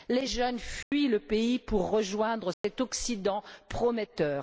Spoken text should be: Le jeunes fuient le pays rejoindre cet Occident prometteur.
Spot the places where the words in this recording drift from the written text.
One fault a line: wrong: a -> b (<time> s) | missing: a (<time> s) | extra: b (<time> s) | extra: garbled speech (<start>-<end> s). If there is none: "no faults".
wrong: Le -> Les (0.1 s)
extra: pour (1.6 s)